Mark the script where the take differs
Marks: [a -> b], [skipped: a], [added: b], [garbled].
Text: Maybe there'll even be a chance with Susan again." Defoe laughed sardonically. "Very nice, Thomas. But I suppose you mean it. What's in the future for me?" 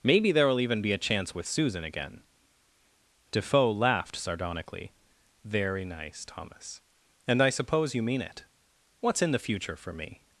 Maybe there'll even be a chance with Susan again." Defoe laughed sardonically. "Very nice, Thomas. [But -> And] I suppose you mean it. What's in the future for me?"